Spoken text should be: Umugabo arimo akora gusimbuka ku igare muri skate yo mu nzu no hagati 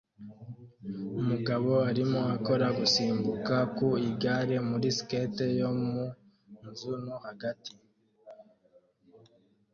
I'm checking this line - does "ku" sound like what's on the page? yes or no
yes